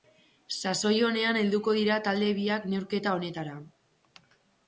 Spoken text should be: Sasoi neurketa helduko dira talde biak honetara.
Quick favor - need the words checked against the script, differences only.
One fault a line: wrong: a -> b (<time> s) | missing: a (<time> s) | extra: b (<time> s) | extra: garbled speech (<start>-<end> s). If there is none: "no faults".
wrong: neurketa -> onean (1.1 s)
extra: neurketa (2.7 s)